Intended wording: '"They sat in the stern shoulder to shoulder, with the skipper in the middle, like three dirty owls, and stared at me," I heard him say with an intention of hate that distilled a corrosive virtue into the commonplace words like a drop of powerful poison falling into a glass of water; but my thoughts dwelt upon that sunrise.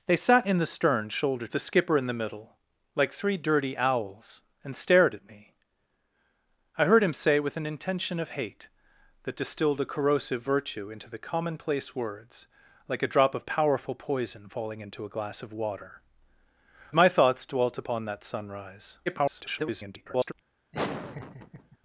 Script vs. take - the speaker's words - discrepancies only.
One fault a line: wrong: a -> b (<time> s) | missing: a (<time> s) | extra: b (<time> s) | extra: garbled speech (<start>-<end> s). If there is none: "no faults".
missing: to shoulder with (1.5 s)
missing: but (16.0 s)
extra: garbled speech (19.1-20.3 s)